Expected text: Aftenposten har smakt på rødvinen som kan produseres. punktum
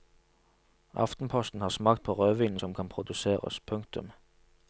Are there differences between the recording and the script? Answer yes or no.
no